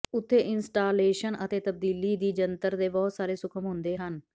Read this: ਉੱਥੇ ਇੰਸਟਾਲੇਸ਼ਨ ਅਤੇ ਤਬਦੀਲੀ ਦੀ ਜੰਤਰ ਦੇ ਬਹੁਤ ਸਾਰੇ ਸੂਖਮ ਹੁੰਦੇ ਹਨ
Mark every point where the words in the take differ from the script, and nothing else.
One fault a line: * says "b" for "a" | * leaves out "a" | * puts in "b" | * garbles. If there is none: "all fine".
all fine